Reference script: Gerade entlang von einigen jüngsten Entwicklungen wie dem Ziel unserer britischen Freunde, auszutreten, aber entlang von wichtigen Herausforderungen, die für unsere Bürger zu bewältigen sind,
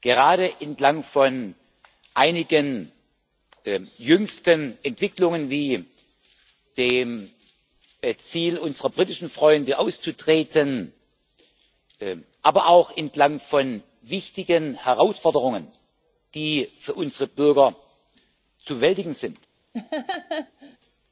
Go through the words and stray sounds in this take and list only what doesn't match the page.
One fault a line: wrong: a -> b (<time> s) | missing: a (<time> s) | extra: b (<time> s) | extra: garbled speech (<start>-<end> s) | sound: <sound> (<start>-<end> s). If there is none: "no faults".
extra: auch (12.7 s)
sound: laugh (19.7-20.8 s)